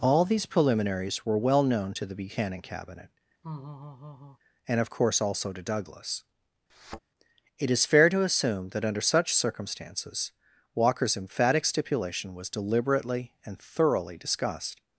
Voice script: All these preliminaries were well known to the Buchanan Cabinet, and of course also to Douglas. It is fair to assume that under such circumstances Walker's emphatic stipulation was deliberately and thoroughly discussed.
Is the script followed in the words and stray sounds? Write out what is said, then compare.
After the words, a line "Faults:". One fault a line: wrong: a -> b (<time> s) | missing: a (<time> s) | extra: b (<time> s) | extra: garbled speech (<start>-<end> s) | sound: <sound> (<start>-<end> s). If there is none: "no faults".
All these preliminaries were well known to the Buchanan Cabinet, and of course also to Douglas. It is fair to assume that under such circumstances Walker's emphatic stipulation was deliberately and thoroughly discussed.
Faults:
sound: laugh (3.4-4.4 s)
sound: thud (6.7-7.0 s)